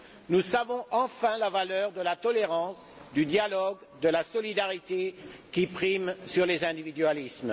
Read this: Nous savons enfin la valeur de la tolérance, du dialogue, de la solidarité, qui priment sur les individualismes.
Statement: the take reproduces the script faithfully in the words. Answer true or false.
true